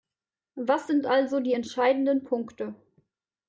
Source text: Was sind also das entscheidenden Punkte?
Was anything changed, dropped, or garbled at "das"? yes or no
yes